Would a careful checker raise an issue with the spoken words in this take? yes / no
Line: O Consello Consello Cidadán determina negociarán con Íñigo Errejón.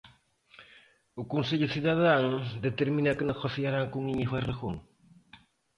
yes